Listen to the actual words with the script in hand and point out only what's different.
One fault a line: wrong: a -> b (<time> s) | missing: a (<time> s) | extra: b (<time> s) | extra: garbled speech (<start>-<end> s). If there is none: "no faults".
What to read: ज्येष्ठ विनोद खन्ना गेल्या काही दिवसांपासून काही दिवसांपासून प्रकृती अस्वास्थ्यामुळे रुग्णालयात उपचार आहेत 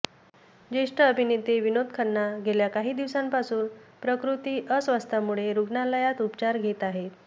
extra: अभिनेते (1.0 s)
missing: काही दिवसांपासून (3.7 s)
extra: घेत (6.6 s)